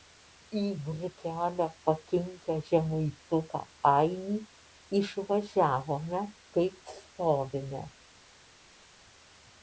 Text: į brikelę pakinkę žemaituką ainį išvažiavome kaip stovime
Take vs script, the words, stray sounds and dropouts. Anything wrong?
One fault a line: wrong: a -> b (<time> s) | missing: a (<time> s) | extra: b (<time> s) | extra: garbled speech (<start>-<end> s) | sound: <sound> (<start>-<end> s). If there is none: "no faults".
no faults